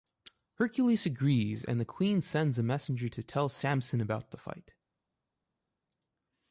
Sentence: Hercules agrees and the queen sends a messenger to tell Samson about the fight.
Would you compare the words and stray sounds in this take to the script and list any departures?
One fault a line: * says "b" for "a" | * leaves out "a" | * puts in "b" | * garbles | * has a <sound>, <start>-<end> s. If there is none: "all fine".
all fine